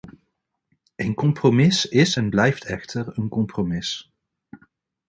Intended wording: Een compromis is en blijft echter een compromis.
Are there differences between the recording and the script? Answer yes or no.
no